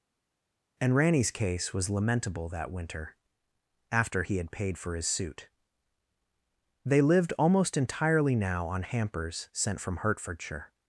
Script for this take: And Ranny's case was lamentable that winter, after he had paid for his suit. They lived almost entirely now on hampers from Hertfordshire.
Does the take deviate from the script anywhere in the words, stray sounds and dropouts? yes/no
yes